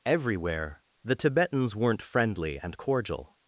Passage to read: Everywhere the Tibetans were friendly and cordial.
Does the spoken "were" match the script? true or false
false